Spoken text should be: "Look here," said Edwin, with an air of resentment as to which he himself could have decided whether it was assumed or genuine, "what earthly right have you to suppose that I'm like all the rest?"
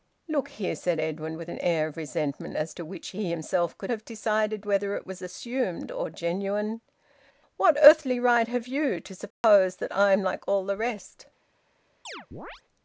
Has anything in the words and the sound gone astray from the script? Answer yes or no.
yes